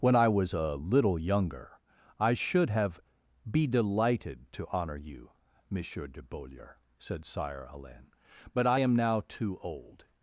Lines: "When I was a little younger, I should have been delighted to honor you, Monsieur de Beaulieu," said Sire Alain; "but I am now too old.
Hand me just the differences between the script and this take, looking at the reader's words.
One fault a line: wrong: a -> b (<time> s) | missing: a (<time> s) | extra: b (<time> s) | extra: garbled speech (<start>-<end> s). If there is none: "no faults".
wrong: been -> be (3.5 s)